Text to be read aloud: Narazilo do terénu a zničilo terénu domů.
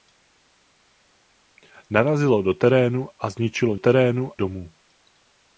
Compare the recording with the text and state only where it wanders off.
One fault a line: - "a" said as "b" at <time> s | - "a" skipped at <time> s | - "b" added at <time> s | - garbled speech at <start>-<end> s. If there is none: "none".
none